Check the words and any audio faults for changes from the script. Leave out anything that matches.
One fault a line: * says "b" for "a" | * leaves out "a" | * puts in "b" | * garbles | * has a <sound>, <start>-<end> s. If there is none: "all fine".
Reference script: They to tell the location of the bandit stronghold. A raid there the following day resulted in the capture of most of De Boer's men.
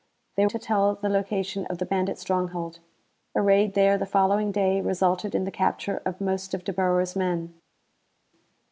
all fine